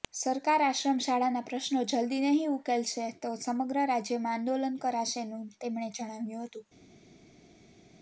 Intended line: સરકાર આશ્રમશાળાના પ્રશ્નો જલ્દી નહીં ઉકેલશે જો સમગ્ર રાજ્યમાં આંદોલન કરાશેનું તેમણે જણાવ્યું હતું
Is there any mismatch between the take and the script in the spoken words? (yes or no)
yes